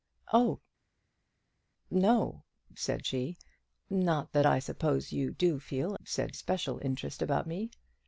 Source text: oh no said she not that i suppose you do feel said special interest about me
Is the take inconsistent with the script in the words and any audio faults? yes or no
no